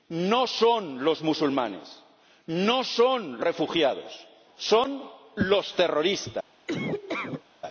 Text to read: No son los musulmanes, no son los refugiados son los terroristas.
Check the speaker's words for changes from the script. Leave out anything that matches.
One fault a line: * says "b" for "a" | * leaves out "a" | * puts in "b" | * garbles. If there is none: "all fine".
* leaves out "los"